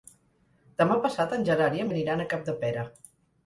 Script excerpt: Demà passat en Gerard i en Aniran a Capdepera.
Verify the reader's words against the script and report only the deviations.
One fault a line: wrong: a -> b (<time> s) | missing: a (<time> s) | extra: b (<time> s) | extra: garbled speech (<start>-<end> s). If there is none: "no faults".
no faults